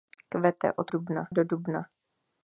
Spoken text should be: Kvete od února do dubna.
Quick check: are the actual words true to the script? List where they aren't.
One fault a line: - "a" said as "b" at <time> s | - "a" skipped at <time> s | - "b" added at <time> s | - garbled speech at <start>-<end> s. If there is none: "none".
- "února" said as "dubna" at 0.9 s